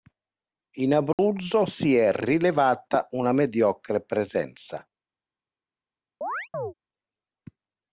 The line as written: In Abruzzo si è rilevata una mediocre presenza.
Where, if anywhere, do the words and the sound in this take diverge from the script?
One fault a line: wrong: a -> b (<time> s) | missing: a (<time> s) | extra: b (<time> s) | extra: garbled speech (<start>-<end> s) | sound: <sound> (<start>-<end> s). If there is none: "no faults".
sound: dropout (1.1-1.2 s)
sound: chirp (6.2-6.7 s)